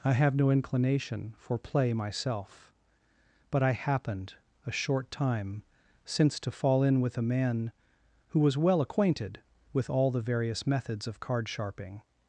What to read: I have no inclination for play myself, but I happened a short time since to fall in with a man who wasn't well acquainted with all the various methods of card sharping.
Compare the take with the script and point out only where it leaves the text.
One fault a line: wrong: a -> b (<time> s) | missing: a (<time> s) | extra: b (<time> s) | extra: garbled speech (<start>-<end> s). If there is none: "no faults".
wrong: wasn't -> was (8.4 s)